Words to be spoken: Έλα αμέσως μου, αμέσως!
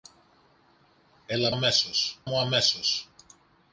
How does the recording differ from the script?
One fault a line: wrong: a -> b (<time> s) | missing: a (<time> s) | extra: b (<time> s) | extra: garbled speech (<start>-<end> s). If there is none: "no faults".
no faults